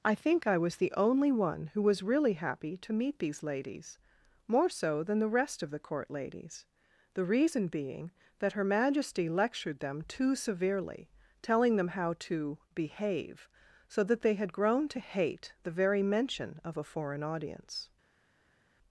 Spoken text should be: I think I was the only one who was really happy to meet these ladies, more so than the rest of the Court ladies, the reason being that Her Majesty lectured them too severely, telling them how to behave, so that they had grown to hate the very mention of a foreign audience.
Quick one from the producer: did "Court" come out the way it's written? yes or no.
yes